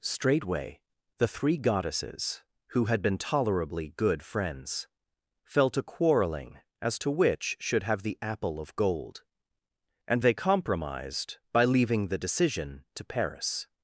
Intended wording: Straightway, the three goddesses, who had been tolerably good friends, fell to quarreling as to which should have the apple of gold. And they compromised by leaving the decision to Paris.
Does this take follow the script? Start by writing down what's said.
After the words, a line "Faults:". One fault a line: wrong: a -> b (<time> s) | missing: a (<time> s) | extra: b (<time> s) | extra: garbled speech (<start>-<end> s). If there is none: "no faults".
Straightway, the three goddesses, who had been tolerably good friends, fell to quarreling as to which should have the apple of gold. And they compromised by leaving the decision to Paris.
Faults:
no faults